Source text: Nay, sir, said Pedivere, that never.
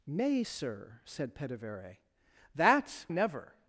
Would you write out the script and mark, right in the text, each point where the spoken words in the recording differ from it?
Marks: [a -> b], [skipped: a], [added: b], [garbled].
Nay, sir, said Pedivere, that never.